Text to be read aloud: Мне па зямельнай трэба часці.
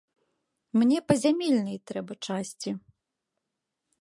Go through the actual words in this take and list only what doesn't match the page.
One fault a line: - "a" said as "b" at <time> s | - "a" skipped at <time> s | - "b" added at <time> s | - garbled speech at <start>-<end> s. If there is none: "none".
none